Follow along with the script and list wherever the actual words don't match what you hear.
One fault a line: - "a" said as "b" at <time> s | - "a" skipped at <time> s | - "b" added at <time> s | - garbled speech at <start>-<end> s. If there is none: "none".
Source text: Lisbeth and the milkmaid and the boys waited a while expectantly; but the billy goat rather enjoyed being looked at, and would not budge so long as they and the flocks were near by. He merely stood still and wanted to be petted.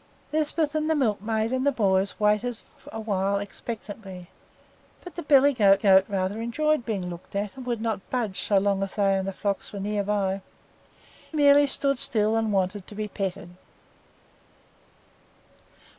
- "goat" added at 5.8 s
- "He" skipped at 10.4 s